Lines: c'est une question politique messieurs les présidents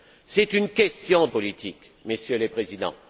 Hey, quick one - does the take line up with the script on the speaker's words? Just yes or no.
yes